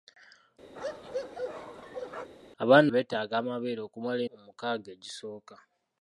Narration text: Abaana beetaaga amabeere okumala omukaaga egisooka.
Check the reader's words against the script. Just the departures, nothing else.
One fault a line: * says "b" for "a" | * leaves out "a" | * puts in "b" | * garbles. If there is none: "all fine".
all fine